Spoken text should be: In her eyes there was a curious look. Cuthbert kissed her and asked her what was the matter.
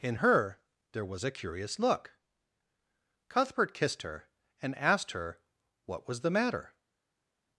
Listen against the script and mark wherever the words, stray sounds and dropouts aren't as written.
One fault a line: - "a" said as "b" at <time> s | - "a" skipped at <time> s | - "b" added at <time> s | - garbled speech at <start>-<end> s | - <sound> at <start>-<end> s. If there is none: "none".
- "eyes" skipped at 0.6 s